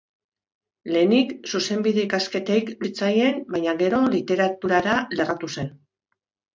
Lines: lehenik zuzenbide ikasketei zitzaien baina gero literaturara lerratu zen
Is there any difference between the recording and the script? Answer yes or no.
no